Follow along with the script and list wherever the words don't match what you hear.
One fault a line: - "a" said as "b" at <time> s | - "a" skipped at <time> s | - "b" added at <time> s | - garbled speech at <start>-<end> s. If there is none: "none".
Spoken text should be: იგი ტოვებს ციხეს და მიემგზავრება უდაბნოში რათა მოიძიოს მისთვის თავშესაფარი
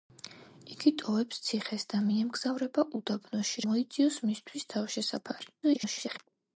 - "რათა" skipped at 3.6 s
- garbled speech at 5.6-6.2 s